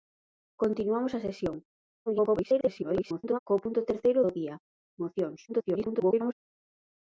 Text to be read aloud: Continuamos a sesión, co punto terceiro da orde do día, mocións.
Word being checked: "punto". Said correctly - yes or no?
yes